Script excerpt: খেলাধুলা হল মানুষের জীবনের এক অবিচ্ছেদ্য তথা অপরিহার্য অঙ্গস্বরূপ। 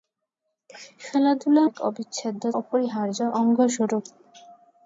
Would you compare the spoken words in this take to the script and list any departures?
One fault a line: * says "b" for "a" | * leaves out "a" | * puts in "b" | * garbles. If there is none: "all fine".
* leaves out "হল মানুষের জীবনের"
* leaves out "তথা"